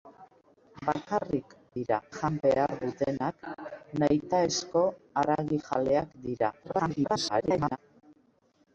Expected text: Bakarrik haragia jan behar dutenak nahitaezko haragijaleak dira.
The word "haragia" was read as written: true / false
false